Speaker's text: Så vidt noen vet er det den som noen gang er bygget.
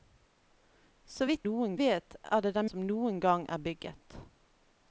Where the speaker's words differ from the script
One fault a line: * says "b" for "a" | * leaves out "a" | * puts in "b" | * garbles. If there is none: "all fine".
all fine